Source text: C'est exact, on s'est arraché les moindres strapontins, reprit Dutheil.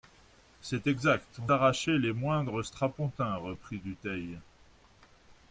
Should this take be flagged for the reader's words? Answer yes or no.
yes